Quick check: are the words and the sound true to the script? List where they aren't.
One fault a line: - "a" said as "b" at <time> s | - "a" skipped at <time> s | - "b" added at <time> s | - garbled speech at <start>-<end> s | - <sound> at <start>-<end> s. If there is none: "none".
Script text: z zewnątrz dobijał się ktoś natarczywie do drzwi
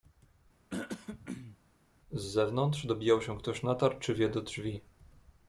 - throat clearing at 0.7-1.6 s